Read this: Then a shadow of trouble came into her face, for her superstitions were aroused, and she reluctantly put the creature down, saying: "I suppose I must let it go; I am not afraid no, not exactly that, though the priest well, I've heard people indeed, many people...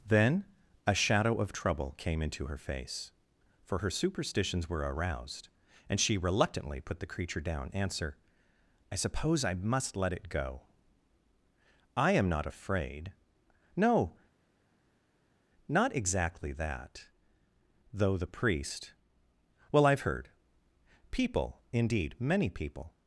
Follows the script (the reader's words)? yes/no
no